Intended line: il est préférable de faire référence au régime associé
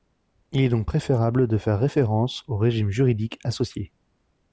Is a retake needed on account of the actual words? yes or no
yes